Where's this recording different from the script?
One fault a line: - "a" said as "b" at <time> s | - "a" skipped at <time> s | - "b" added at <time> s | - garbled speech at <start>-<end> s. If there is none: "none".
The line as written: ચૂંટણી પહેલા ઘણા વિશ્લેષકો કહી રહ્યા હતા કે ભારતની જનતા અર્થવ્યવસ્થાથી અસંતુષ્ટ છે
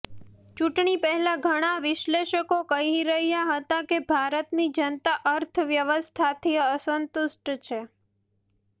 none